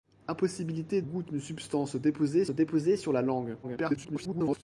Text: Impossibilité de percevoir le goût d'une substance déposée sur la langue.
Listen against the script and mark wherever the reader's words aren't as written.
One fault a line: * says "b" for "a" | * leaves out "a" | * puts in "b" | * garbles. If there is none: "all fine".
* leaves out "de percevoir le"
* puts in "déposée"
* garbles